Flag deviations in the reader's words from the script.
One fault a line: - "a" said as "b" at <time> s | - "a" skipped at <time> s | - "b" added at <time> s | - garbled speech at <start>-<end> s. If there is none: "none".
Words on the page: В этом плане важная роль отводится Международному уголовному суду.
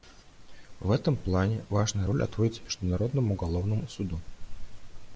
none